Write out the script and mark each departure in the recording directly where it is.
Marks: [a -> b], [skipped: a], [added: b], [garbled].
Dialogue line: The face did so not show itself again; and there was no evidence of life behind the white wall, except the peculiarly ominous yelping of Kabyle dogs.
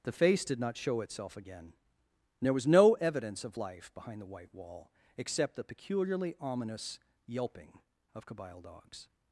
The face did [skipped: so] not show itself again; and there was no evidence of life behind the white wall, except the peculiarly ominous yelping of Kabyle dogs.